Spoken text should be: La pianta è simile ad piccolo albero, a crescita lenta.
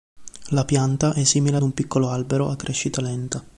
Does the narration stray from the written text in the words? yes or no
yes